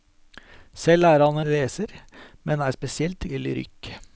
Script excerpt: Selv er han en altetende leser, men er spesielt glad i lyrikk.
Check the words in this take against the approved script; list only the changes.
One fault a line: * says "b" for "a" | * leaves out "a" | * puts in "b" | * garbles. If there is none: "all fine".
* leaves out "en altetende"
* leaves out "glad"